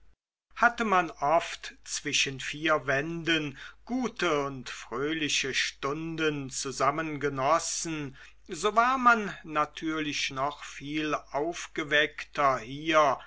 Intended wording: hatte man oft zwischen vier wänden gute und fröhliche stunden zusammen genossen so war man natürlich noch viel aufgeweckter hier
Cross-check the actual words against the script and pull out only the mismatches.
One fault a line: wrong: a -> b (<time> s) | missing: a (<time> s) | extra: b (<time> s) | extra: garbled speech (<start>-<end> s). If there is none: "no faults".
no faults